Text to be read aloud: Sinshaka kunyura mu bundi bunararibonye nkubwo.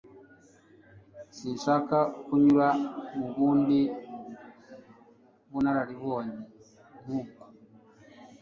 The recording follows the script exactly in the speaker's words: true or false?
true